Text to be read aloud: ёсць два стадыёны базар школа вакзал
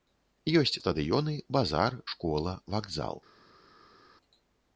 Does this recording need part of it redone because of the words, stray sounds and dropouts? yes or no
yes